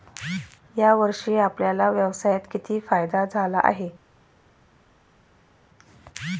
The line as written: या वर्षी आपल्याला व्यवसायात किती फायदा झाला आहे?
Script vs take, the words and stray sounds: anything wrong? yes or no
no